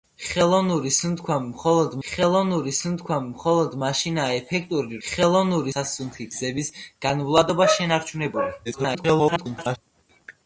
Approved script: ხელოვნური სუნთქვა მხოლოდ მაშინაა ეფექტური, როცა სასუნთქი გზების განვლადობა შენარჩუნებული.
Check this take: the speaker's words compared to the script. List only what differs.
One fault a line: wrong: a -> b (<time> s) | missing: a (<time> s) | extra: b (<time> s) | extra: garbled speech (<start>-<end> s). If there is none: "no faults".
extra: ხელოვნური სუნთქვა მხოლოდ (2.1 s)
wrong: როცა -> ხელოვნური (5.1 s)
extra: garbled speech (8.6-9.8 s)